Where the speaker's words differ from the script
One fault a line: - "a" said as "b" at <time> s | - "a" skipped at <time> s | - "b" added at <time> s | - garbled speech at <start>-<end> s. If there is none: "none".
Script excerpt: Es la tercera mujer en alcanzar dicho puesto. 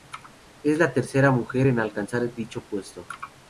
none